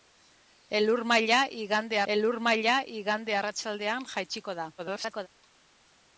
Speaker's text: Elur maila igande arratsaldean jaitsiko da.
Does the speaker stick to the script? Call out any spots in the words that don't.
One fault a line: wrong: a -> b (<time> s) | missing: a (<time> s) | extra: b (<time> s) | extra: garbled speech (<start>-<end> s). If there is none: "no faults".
extra: elur maila igande (2.1 s)
extra: garbled speech (4.8-5.3 s)